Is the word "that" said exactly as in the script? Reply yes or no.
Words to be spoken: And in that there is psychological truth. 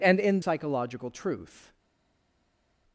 no